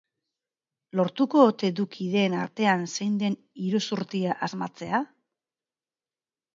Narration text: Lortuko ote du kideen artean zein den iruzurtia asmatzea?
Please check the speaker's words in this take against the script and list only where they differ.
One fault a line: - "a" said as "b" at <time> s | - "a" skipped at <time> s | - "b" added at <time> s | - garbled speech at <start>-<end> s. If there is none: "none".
none